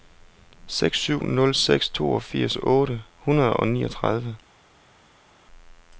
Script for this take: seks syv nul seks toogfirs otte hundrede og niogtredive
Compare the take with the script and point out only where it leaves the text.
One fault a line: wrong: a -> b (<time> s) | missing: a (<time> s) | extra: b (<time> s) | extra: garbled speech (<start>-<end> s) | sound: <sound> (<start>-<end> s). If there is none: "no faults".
no faults